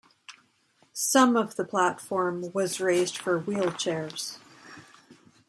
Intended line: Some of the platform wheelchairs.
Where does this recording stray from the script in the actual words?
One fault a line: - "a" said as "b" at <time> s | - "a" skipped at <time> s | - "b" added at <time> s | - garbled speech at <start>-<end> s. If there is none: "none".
- "was raised for" added at 2.5 s